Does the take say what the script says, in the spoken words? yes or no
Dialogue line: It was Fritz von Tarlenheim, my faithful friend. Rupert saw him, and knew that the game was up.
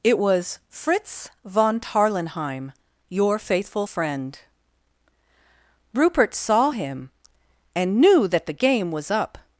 no